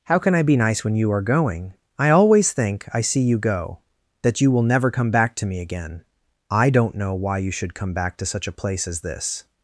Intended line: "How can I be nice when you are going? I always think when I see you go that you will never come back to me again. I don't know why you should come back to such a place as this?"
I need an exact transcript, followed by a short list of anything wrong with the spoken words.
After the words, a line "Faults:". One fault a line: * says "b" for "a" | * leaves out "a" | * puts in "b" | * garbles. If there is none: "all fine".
"How can I be nice when you are going? I always think I see you go that you will never come back to me again. I don't know why you should come back to such a place as this?"
Faults:
* leaves out "when"